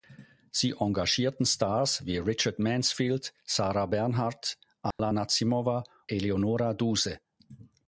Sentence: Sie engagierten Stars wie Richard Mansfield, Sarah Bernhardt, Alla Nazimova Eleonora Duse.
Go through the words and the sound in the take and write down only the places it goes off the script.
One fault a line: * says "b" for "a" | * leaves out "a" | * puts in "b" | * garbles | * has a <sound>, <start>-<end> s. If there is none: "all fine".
* has a dropout, 4.9-5.0 s